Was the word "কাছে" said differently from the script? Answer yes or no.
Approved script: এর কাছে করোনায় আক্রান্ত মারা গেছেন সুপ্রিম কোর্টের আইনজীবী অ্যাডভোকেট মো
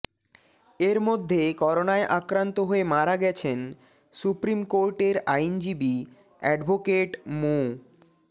yes